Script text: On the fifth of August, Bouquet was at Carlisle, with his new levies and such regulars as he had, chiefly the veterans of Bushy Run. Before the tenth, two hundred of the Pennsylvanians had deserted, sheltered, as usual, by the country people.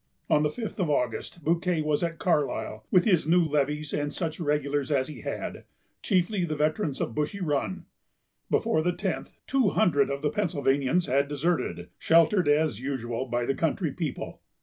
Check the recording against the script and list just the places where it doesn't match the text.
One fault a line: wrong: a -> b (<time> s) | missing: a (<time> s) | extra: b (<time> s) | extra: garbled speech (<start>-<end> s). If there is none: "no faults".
no faults